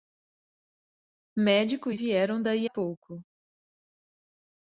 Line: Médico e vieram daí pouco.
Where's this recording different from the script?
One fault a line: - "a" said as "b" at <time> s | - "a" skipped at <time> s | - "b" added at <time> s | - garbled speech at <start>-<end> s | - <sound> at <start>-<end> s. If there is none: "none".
none